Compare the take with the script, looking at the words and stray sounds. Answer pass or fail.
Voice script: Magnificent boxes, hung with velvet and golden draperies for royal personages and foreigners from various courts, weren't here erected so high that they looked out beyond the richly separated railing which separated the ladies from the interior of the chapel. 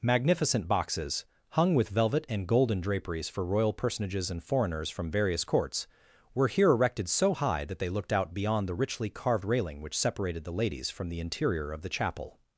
fail